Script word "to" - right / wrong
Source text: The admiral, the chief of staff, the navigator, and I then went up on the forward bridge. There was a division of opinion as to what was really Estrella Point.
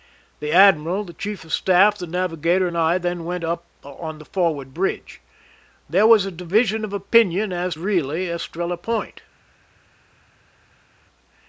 wrong